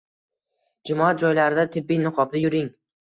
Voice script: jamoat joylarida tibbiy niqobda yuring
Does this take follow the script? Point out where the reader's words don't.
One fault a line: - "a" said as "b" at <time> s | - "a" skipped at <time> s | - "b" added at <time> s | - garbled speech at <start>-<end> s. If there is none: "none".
none